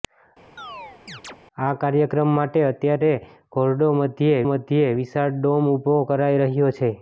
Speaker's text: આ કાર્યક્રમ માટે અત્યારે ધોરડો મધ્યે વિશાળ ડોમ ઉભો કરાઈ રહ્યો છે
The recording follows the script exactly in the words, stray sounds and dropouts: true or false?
false